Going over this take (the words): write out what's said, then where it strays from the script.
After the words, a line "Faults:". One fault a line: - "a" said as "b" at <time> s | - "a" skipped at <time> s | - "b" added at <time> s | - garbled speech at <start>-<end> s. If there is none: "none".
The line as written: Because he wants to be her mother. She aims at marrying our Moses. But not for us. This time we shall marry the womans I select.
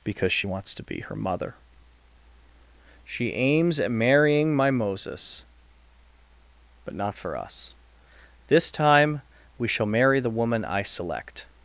Because she wants to be her mother. She aims at marrying my Moses. But not for us. This time we shall marry the woman I select.
Faults:
- "he" said as "she" at 0.3 s
- "our" said as "my" at 4.5 s
- "womans" said as "woman" at 10.3 s